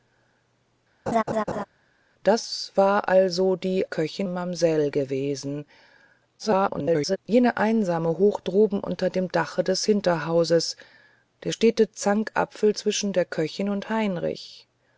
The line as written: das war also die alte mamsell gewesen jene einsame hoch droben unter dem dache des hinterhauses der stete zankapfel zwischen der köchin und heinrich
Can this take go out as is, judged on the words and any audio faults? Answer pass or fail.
fail